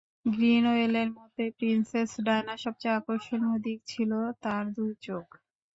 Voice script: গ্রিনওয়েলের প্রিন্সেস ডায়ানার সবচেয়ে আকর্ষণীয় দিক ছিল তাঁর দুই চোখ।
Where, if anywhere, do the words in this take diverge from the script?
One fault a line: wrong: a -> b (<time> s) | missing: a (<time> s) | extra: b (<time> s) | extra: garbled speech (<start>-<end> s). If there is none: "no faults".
extra: মতে (1.2 s)